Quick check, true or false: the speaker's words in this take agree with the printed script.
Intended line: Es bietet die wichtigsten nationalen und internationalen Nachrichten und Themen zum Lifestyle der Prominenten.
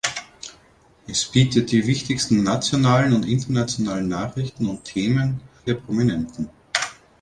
false